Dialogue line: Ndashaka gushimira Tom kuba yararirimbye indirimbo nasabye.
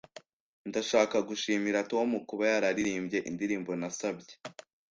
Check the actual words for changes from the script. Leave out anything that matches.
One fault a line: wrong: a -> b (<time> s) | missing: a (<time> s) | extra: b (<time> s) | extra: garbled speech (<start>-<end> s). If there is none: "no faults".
no faults